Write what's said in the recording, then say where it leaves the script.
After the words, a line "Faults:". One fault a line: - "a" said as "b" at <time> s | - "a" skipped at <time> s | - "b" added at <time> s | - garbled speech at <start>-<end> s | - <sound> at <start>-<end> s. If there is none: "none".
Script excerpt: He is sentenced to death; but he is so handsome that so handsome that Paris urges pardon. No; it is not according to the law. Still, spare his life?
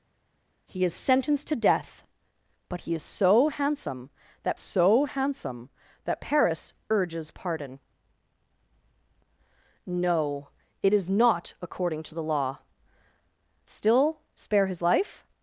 He is sentenced to death; but he is so handsome that so handsome that Paris urges pardon. No; it is not according to the law. Still, spare his life?
Faults:
none